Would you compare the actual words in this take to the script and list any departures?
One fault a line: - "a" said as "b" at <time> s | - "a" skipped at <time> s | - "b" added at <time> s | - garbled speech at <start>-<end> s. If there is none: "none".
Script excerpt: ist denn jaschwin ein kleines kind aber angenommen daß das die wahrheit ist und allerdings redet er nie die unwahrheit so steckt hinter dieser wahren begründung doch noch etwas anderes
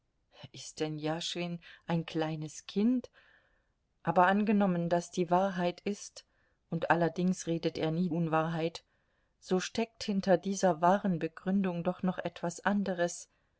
- "das" skipped at 5.1 s
- "die" skipped at 8.1 s